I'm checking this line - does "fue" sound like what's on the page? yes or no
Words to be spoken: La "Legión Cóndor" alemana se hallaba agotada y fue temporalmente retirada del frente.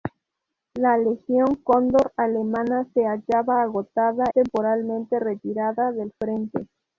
no